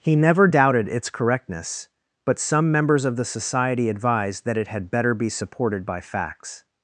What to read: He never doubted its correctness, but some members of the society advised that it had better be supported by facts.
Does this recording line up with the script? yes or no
yes